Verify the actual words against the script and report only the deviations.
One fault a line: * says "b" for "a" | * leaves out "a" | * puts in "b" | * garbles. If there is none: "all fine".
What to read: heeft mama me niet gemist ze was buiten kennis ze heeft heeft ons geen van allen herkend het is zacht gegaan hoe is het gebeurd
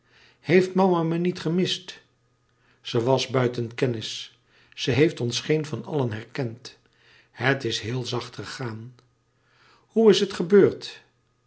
* leaves out "heeft"
* puts in "heel"